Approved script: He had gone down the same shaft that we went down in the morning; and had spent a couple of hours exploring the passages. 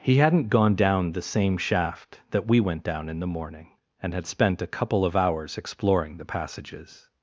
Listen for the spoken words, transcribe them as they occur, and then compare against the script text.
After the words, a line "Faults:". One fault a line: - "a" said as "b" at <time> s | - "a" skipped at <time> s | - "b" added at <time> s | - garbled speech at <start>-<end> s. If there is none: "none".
He hadn't gone down the same shaft that we went down in the morning; and had spent a couple of hours exploring the passages.
Faults:
- "had" said as "hadn't" at 0.2 s